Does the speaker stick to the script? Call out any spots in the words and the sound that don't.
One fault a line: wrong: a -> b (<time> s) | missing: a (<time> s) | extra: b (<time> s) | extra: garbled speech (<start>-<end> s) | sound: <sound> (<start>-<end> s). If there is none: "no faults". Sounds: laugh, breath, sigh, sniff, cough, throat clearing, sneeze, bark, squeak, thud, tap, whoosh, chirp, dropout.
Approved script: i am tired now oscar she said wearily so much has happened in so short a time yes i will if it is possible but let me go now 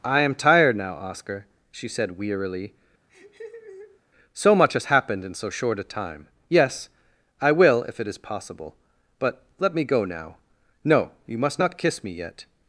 sound: laugh (3.1-4.0 s)
extra: no you must not kiss me yet (10.8 s)